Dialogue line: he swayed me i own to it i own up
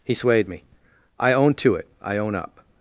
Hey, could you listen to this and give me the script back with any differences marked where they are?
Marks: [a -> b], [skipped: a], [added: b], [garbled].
he swayed me i own to it i own up